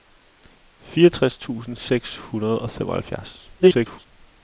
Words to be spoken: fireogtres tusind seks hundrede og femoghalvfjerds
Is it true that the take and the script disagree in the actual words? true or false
true